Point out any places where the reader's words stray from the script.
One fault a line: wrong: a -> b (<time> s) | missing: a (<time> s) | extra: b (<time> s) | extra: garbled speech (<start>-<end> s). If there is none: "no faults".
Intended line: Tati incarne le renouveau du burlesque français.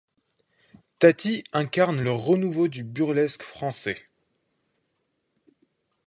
no faults